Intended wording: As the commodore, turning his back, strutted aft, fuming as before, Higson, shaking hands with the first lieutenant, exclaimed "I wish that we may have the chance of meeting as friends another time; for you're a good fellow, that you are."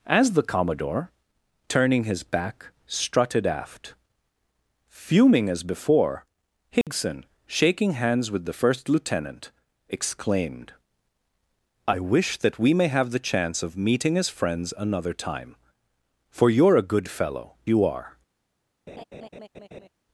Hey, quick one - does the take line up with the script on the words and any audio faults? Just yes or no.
no